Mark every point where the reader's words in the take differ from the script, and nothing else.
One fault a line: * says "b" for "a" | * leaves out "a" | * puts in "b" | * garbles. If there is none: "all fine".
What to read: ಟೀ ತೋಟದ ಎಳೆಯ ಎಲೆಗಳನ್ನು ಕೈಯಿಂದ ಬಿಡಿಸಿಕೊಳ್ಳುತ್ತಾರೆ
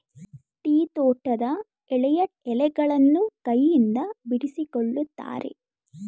all fine